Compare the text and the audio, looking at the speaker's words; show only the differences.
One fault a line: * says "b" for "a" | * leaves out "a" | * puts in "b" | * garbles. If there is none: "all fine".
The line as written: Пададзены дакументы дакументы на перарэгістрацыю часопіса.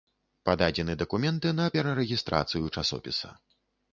* leaves out "дакументы"